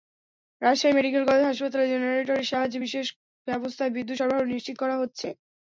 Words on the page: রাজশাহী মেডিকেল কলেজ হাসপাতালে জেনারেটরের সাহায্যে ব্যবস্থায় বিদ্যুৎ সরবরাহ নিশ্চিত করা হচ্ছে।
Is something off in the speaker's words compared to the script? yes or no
yes